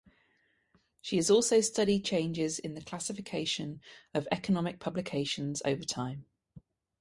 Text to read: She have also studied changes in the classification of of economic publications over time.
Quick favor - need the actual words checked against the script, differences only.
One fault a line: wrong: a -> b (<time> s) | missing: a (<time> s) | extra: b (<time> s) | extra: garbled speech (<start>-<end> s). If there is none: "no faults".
wrong: have -> has (1.2 s)
missing: of (4.3 s)